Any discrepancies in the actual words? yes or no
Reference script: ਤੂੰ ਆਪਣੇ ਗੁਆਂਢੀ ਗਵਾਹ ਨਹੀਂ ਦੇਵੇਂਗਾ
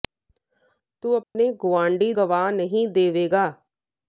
no